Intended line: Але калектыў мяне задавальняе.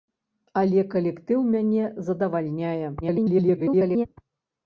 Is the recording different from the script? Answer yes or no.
yes